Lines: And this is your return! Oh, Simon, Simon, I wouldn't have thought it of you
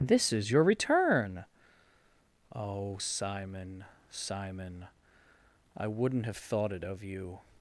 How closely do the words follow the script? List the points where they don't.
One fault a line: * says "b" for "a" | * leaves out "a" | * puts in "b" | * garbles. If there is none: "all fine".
* leaves out "And"